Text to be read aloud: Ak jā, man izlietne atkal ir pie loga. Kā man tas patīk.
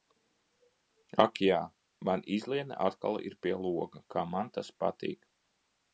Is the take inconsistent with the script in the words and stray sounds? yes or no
no